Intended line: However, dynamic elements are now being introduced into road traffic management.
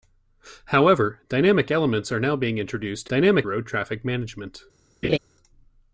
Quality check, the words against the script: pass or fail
fail